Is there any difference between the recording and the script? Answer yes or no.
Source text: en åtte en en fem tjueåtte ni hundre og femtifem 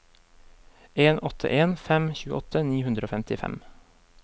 yes